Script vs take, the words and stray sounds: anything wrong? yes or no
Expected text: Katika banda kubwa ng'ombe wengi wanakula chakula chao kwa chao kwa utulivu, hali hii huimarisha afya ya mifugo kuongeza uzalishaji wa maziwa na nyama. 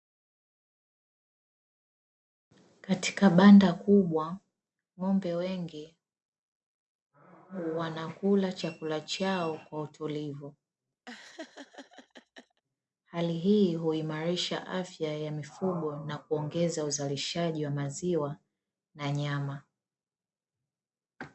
yes